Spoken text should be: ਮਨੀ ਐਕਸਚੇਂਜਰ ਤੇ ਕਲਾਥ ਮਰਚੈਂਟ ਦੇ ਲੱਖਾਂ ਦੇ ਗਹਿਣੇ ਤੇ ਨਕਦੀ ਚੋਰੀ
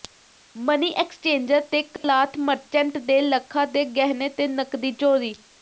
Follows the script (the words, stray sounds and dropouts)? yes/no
no